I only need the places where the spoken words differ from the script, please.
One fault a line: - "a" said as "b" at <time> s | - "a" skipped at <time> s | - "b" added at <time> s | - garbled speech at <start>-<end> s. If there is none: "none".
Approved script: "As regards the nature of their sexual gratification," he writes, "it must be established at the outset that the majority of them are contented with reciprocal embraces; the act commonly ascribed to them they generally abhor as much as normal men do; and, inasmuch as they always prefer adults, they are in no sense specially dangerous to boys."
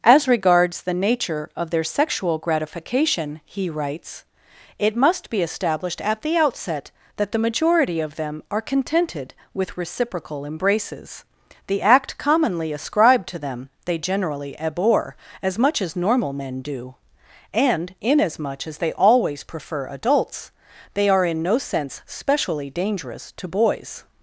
none